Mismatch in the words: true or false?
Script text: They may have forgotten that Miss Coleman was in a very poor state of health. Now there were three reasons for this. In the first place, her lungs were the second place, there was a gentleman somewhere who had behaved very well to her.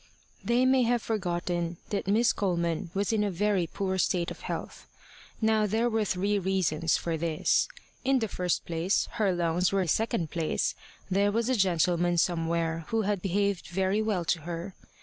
false